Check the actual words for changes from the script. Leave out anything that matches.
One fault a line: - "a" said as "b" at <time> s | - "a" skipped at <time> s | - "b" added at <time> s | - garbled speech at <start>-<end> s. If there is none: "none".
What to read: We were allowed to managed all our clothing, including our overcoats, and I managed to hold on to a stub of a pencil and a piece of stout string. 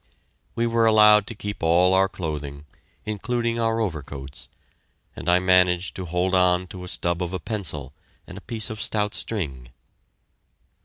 - "managed" said as "keep" at 1.4 s